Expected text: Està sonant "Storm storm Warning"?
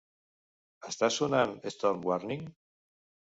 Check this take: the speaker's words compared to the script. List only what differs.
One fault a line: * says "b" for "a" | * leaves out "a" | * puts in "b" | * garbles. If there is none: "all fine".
* leaves out "storm"